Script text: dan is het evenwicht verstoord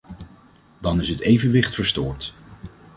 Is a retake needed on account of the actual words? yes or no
no